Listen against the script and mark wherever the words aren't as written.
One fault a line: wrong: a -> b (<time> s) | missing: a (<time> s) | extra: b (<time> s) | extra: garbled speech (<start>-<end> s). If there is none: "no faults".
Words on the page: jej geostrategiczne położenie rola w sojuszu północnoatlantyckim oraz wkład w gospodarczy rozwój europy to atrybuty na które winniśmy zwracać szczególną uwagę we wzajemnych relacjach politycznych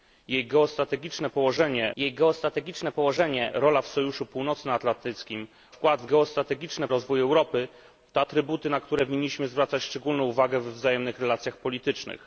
extra: jej geostrategiczne położenie (2.0 s)
missing: oraz (5.5 s)
wrong: gospodarczy -> geostrategiczne (6.1 s)